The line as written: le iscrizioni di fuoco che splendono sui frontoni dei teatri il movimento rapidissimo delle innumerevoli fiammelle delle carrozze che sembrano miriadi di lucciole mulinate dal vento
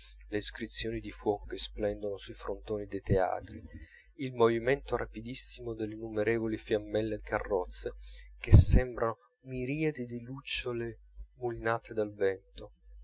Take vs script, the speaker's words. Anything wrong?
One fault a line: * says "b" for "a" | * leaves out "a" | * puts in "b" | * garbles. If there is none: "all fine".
* leaves out "delle"